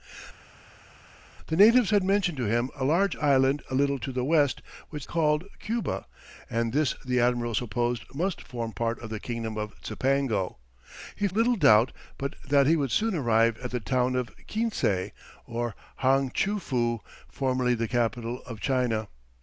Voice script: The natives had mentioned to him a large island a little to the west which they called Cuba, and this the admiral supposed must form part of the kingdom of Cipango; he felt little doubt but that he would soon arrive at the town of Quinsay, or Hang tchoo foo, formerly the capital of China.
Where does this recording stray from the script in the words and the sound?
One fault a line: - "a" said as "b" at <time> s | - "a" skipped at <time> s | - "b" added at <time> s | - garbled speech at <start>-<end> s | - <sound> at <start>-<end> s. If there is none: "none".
- "they" skipped at 5.1 s
- "felt" skipped at 11.3 s